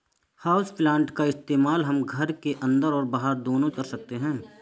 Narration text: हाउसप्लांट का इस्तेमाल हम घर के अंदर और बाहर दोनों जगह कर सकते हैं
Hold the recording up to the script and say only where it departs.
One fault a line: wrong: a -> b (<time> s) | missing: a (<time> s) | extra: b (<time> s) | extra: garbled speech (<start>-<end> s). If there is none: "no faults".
missing: जगह (3.7 s)